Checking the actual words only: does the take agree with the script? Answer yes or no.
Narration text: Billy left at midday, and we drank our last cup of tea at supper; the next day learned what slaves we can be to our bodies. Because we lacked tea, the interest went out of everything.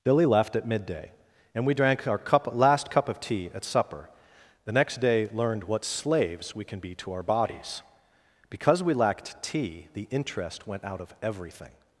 no